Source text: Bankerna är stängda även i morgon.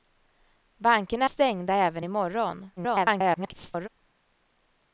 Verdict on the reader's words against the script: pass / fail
fail